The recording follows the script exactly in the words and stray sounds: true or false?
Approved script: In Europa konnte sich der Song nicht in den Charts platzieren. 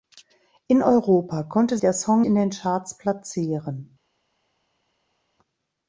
false